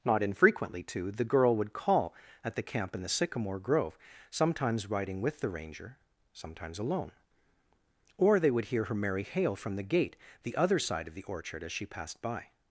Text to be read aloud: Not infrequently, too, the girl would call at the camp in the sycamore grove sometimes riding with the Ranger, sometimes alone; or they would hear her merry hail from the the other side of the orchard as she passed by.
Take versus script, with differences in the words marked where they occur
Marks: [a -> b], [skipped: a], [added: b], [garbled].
Not infrequently, too, the girl would call at the camp in the sycamore grove sometimes riding with the Ranger, sometimes alone; or they would hear her merry hail from the [added: gate] the other side of the orchard as she passed by.